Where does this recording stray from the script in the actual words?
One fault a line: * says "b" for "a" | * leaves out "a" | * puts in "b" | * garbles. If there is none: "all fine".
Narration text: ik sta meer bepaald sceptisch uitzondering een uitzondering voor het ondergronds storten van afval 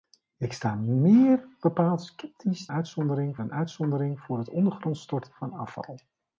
all fine